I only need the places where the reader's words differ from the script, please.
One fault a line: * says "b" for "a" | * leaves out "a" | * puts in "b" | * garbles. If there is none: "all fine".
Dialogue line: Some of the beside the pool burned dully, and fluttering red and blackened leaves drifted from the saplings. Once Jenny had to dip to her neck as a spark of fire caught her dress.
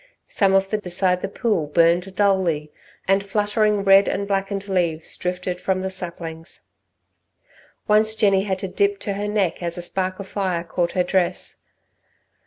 all fine